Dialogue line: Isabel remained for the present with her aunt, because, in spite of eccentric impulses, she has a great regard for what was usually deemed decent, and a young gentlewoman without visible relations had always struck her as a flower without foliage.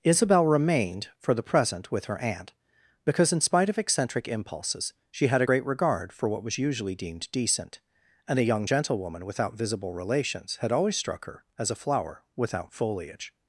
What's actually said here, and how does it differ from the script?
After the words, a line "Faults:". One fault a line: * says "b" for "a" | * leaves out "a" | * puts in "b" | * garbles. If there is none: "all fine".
Isabel remained for the present with her aunt, because, in spite of eccentric impulses, she had a great regard for what was usually deemed decent, and a young gentlewoman without visible relations had always struck her as a flower without foliage.
Faults:
* says "had" for "has"